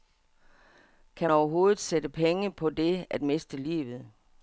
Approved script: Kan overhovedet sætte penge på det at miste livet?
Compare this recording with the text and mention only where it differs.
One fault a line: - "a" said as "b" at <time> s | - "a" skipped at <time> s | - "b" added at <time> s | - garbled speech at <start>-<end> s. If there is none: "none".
none